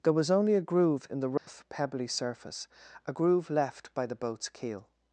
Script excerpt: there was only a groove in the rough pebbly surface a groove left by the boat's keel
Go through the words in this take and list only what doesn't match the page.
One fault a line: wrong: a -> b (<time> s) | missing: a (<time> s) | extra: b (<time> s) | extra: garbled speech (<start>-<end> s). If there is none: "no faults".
no faults